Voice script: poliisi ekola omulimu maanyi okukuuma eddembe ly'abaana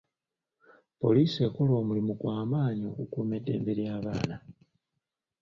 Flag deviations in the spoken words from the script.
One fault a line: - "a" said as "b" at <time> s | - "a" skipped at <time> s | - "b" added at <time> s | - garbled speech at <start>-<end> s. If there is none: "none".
- "gwa" added at 2.2 s